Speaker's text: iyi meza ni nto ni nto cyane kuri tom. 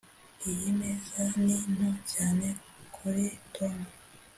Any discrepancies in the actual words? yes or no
yes